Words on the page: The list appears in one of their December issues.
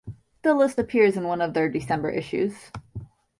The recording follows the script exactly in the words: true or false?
true